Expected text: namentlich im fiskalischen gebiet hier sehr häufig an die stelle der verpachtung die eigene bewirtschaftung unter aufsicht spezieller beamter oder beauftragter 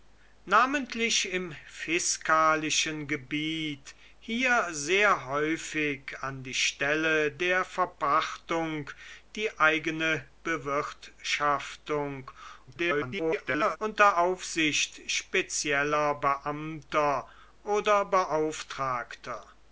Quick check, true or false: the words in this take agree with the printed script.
false